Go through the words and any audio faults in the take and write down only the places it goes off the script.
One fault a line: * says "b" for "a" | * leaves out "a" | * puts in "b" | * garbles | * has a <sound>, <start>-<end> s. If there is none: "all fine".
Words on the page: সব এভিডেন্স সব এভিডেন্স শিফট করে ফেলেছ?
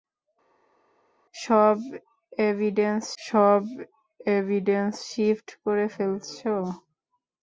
all fine